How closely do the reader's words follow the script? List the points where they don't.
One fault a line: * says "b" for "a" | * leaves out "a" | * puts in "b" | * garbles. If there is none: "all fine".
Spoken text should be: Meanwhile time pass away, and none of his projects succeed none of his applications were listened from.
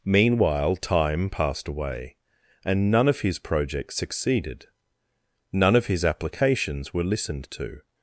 * says "passed" for "pass"
* says "succeeded" for "succeed"
* says "to" for "from"